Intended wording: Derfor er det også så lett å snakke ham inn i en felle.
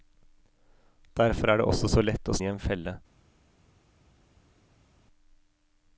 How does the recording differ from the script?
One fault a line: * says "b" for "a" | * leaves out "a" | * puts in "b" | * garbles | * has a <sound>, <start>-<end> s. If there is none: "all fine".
* leaves out "snakke ham inn"